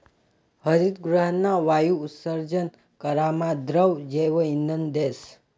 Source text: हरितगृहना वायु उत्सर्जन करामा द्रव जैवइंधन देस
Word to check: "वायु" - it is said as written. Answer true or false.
true